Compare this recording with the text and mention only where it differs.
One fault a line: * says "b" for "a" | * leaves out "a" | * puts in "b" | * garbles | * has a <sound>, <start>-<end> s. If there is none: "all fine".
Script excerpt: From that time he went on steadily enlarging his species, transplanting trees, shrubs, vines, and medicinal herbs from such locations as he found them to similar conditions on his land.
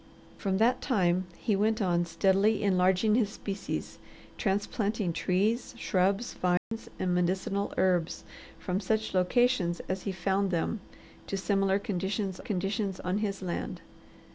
* has a dropout, 6.6-6.7 s
* puts in "conditions"